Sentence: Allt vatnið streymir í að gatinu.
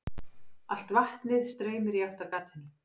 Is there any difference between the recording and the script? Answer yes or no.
yes